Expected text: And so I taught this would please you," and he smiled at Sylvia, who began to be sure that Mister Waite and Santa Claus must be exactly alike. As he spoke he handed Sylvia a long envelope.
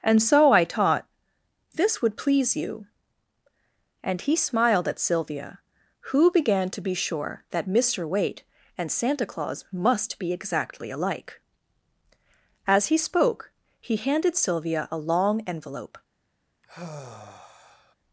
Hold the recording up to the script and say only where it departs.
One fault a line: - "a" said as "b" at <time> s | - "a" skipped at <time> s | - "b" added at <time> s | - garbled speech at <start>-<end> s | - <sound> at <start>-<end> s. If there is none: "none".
- sigh at 16.6-17.9 s